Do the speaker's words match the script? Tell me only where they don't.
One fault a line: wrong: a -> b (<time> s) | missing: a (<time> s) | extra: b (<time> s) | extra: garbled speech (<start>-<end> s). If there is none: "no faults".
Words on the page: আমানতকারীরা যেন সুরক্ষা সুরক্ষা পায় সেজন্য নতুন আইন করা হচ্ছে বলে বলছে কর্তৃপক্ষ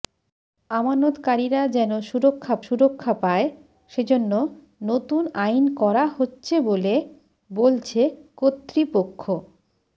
no faults